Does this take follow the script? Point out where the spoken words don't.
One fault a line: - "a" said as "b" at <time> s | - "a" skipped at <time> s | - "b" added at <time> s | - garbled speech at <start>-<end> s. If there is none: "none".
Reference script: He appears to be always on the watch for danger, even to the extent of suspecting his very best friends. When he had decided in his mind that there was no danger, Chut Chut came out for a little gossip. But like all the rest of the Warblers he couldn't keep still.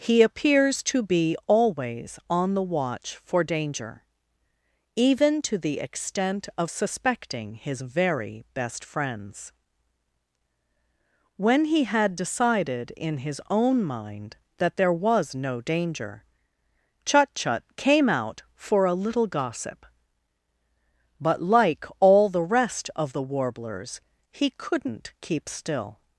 - "own" added at 13.5 s